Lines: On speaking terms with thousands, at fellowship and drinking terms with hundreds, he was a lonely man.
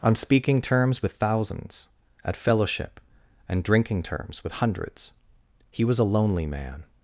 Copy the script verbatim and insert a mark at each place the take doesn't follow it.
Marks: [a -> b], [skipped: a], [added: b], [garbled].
On speaking terms with thousands, at fellowship and drinking terms with hundreds, he was a lonely man.